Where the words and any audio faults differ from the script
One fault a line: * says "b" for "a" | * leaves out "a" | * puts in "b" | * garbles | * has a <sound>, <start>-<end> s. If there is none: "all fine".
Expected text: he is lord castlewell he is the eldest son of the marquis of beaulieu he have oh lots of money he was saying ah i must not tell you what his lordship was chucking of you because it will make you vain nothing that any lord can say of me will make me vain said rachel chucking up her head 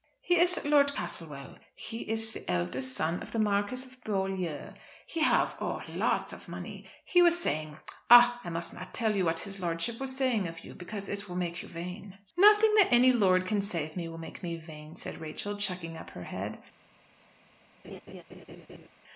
* says "saying" for "chucking"
* has a laugh, 17.8-18.9 s